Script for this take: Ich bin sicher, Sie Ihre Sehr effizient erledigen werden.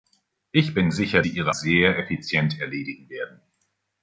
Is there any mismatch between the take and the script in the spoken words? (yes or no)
no